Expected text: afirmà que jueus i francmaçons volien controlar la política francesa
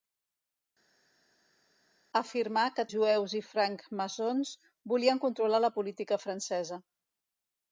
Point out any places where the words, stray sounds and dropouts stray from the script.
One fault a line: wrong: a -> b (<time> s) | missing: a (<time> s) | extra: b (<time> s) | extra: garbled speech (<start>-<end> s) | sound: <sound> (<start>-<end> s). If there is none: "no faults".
no faults